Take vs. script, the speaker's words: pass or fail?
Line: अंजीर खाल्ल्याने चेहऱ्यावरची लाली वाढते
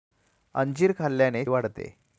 fail